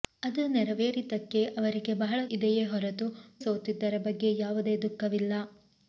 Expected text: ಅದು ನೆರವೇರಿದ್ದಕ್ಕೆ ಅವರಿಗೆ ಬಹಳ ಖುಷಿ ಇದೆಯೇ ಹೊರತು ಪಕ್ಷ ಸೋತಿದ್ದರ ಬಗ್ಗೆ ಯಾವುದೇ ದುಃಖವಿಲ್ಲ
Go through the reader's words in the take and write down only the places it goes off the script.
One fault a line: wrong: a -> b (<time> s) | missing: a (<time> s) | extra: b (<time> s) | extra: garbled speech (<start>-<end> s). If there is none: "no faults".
missing: ಖುಷಿ (2.2 s)
missing: ಪಕ್ಷ (3.1 s)